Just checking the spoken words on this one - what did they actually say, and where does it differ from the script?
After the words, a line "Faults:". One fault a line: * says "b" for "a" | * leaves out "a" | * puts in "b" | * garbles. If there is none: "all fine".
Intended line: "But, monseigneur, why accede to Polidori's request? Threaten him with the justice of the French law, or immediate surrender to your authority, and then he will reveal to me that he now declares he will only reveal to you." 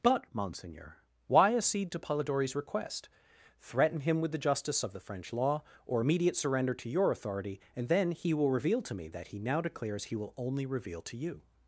"But, monseigneur, why accede to Polidori's request? Threaten him with the justice of the French law, or immediate surrender to your authority, and then he will reveal to me that he now declares he will only reveal to you."
Faults:
all fine